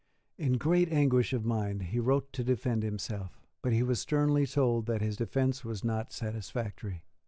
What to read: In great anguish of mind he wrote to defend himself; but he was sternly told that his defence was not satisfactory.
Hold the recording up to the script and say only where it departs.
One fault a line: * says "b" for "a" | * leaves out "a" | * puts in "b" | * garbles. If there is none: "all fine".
all fine